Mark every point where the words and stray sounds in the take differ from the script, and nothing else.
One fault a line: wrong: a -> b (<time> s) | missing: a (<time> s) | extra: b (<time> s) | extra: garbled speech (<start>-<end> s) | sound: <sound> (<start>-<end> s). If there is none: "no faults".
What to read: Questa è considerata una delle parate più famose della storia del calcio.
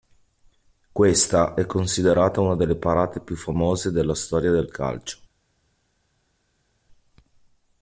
no faults